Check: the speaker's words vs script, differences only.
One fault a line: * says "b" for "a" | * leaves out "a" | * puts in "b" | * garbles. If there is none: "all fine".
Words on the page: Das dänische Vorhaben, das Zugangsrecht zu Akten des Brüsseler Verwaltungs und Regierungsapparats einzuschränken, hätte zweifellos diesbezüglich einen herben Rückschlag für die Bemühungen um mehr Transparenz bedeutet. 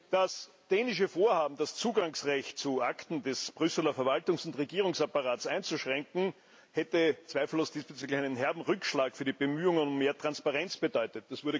all fine